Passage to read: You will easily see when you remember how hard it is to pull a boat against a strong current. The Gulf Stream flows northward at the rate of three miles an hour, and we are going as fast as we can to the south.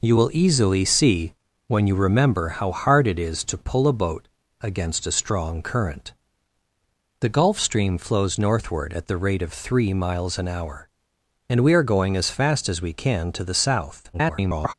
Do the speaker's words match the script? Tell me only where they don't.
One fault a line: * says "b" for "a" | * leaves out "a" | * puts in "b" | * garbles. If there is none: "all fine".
* garbles